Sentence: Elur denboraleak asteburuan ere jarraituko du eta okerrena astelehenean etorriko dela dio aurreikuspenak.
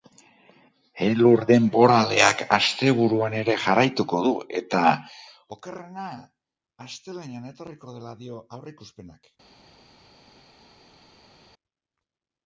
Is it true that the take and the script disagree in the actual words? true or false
false